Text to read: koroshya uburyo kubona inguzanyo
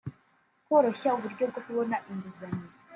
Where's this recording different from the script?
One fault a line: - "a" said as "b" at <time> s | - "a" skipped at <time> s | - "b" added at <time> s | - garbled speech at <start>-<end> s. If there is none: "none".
- "bwo" added at 1.5 s